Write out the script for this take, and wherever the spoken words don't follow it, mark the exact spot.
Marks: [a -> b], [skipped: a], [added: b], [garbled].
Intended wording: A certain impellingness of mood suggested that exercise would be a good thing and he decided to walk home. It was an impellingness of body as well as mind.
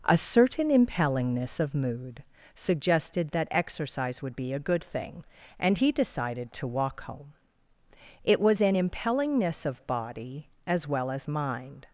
A certain impellingness of mood suggested that exercise would be a good thing and he decided to walk home. It was an impellingness of body as well as mind.